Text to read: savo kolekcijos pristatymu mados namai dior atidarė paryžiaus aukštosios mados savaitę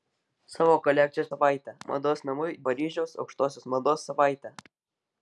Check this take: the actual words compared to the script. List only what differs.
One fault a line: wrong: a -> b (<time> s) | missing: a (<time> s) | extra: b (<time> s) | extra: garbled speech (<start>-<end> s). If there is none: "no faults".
wrong: pristatymu -> savaitę (1.3 s)
missing: dior atidarė (2.5 s)